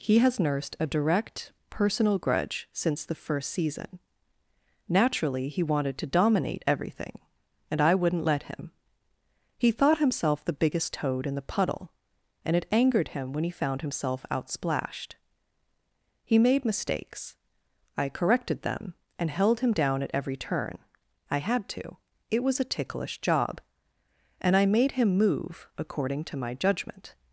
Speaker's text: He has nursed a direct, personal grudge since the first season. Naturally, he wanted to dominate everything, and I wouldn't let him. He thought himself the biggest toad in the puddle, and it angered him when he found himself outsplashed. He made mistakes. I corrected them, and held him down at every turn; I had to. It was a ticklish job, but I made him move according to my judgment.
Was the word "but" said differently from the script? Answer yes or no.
yes